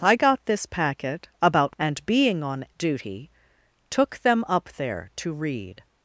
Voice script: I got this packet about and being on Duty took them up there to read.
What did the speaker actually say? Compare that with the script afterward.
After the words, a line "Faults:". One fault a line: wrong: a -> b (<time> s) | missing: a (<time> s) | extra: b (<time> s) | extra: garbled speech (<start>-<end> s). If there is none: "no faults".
I got this packet about and being on Duty took them up there to read.
Faults:
no faults